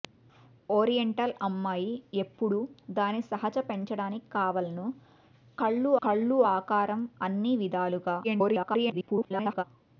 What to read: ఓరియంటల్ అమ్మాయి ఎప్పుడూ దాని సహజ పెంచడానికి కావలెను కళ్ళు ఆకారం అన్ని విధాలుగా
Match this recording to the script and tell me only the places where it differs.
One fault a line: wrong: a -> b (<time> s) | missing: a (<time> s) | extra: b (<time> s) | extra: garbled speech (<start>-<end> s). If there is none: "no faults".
extra: కళ్ళు (6.0 s)
extra: garbled speech (8.2-9.6 s)